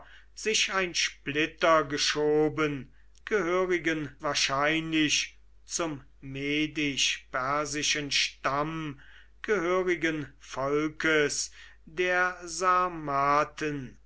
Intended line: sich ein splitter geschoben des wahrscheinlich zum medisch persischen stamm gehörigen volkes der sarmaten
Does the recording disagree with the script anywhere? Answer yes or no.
yes